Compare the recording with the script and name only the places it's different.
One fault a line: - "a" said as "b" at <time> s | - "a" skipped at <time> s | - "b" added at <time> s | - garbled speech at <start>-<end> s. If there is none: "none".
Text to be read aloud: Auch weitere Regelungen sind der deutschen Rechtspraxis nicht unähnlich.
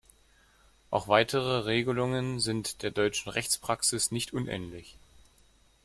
none